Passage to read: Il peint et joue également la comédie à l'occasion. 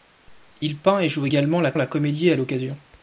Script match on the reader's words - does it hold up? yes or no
no